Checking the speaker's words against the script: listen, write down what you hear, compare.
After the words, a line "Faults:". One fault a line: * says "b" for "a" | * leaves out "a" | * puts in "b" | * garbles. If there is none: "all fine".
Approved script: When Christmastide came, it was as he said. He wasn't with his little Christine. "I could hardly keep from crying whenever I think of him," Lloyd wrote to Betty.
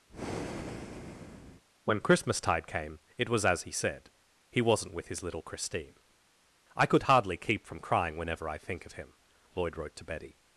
When Christmastide came, it was as he said. He wasn't with his little Christine. "I could hardly keep from crying whenever I think of him," Lloyd wrote to Betty.
Faults:
all fine